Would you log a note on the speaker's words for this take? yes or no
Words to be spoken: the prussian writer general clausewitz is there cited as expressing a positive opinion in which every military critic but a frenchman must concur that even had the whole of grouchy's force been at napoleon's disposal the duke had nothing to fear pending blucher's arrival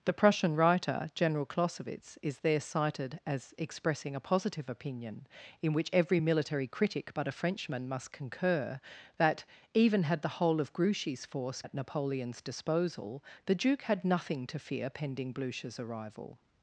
yes